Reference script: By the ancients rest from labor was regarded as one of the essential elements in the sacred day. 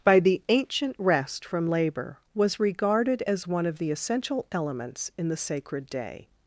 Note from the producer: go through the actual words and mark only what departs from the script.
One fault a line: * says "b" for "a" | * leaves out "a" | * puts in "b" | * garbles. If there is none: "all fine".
* says "ancient" for "ancients"